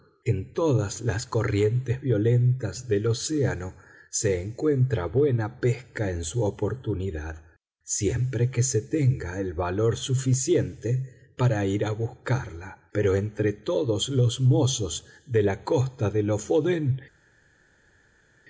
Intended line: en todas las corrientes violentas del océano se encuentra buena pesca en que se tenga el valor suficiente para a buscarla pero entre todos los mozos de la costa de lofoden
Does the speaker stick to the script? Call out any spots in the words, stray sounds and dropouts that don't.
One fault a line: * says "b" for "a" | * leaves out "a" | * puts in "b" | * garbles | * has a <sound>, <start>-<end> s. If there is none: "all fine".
* puts in "su oportunidad siempre"
* puts in "ir"